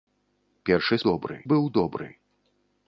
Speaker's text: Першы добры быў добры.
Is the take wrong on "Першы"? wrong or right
right